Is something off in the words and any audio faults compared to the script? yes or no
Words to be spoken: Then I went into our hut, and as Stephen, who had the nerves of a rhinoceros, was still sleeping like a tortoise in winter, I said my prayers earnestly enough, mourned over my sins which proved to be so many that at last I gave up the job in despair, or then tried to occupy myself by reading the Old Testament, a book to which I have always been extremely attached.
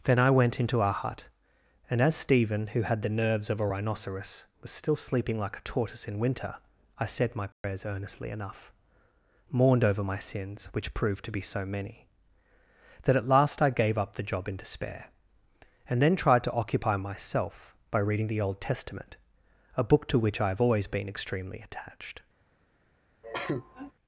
yes